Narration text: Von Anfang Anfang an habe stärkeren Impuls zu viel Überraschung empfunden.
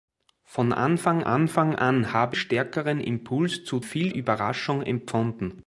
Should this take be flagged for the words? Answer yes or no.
no